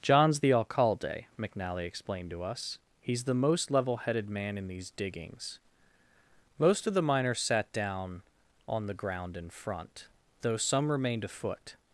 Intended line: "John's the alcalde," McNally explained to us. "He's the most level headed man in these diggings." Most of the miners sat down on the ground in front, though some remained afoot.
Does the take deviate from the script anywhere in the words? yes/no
no